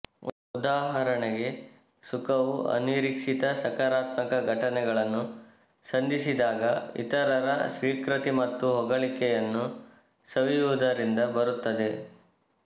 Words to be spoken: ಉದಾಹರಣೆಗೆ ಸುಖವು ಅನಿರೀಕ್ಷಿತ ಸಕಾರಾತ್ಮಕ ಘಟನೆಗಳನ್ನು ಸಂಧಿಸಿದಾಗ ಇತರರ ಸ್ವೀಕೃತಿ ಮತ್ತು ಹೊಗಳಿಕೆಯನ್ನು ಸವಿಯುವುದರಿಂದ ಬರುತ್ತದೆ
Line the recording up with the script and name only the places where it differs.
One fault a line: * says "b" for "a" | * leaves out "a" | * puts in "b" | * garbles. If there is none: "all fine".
all fine